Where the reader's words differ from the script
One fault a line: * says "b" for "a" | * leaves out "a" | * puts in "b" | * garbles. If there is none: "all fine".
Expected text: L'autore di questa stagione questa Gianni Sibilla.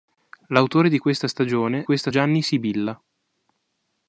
all fine